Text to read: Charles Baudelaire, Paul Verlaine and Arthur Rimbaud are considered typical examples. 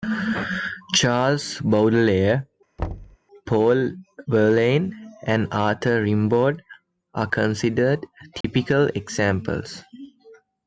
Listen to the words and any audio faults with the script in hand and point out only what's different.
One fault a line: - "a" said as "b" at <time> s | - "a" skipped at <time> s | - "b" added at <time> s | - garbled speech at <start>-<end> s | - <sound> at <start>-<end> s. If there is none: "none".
- thud at 2.8-3.2 s
- dropout at 8.4-8.4 s